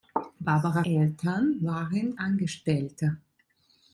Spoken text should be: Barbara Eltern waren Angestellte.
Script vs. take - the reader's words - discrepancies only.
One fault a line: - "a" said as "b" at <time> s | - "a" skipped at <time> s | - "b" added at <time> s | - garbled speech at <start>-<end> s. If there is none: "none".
none